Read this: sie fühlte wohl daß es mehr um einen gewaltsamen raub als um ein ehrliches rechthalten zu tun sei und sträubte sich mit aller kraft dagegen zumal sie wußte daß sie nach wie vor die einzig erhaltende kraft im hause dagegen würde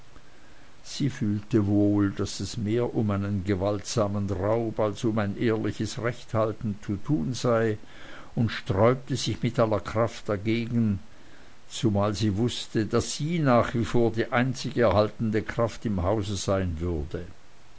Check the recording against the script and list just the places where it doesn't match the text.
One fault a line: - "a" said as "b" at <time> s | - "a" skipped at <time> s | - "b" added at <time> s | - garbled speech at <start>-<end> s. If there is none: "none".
- "dagegen" said as "sein" at 16.4 s